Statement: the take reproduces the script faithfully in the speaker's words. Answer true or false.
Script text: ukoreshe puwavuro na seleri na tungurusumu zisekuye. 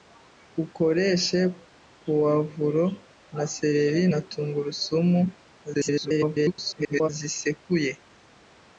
false